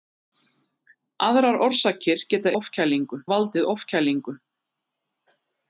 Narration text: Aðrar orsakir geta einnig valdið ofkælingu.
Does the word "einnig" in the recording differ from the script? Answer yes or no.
yes